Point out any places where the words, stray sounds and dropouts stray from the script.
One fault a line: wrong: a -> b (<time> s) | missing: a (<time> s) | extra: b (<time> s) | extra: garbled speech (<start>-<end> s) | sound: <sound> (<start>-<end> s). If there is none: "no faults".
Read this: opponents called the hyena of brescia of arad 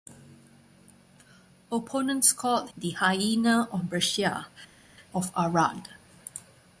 no faults